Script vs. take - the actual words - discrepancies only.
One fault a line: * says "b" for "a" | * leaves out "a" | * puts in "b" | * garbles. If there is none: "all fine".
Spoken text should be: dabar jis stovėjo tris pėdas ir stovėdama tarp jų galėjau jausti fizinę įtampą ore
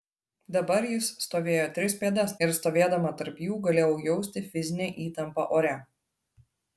all fine